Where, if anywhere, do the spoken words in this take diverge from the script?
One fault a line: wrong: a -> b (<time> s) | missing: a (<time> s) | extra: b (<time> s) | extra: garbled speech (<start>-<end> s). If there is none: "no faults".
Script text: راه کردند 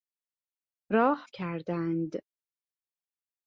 no faults